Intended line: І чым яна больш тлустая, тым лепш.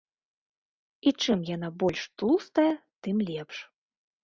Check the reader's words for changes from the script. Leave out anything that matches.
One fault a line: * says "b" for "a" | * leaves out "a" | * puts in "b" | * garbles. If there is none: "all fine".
all fine